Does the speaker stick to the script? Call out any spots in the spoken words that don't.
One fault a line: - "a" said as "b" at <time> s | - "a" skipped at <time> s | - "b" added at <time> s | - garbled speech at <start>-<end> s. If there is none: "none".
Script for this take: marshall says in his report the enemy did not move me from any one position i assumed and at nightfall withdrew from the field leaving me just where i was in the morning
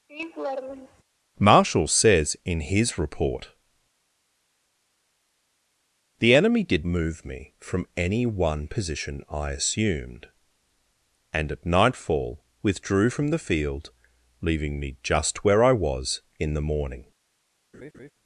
- "not" skipped at 6.9 s